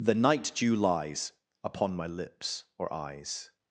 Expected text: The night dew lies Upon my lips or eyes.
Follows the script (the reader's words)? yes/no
yes